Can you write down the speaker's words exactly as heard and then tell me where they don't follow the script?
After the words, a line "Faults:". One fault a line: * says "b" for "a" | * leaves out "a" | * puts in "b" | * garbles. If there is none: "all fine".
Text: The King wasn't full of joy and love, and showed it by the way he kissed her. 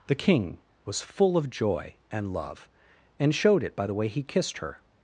The King was full of joy and love, and showed it by the way he kissed her.
Faults:
* says "was" for "wasn't"